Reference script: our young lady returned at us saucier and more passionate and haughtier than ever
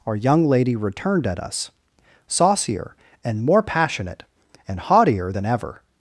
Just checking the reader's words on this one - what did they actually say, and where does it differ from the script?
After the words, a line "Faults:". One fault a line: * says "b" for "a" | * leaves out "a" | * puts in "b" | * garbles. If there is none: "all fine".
our young lady returned at us saucier and more passionate and haughtier than ever
Faults:
all fine